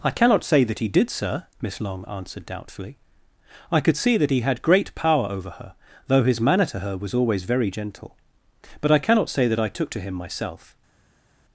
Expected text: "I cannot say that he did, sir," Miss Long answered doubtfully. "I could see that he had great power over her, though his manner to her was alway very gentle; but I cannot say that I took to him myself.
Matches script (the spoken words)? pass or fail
fail